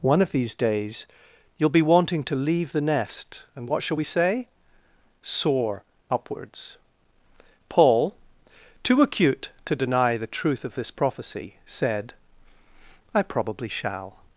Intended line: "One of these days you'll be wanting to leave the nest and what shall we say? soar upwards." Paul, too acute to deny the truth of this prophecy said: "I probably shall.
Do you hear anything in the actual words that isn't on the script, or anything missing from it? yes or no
no